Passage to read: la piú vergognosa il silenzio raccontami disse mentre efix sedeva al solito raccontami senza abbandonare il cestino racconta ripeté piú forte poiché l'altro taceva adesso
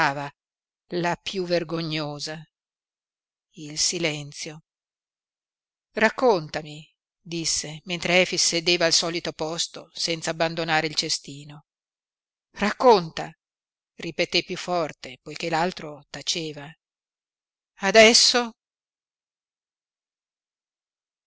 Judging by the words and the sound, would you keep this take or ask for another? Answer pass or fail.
fail